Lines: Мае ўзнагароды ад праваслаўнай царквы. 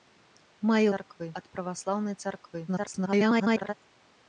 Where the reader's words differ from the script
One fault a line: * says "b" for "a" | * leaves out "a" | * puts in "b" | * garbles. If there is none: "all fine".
* says "царквы" for "ўзнагароды"
* garbles